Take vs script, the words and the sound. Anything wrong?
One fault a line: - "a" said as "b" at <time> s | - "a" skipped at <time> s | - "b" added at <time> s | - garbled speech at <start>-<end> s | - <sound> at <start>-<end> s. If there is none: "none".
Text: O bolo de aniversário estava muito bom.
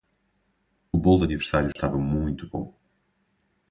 - dropout at 1.7-1.8 s